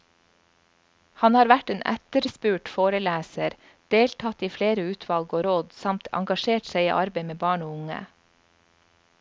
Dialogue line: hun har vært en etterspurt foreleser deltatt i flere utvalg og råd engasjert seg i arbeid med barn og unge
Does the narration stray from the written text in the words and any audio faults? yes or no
yes